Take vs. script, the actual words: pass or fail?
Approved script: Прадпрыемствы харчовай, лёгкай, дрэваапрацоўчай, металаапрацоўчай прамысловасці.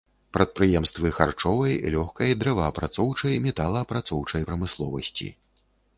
pass